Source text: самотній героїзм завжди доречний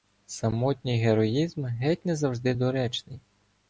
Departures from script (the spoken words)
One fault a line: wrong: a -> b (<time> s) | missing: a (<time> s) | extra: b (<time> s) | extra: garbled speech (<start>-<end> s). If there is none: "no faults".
extra: геть не (1.6 s)